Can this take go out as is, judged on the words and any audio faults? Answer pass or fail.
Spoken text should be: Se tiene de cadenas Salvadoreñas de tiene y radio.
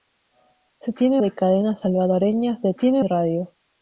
pass